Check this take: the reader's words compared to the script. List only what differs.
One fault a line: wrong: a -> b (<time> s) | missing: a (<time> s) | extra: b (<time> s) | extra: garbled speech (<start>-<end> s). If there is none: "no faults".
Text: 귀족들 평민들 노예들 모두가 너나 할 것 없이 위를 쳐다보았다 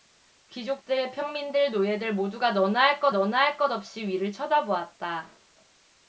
extra: 너나 할 것 (3.1 s)